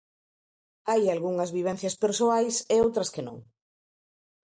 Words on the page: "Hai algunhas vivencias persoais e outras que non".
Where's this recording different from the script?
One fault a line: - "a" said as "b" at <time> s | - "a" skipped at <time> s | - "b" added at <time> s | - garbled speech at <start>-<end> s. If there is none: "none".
none